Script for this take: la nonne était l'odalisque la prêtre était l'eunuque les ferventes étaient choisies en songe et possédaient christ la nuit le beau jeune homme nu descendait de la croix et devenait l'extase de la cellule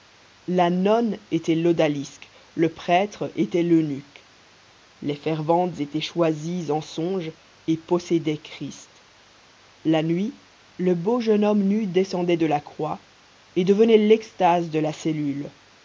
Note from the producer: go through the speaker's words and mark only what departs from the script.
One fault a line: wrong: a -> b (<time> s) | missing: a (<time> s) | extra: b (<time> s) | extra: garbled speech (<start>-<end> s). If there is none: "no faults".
wrong: la -> le (2.5 s)